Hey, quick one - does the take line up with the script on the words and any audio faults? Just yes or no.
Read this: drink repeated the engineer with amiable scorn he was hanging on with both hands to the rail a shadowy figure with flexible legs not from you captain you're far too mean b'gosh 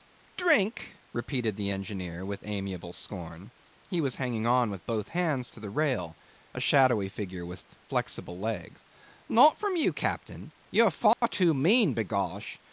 no